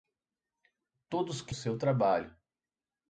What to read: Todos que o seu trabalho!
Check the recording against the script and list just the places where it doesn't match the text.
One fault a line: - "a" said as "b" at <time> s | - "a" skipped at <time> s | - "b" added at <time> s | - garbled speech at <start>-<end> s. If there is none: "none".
none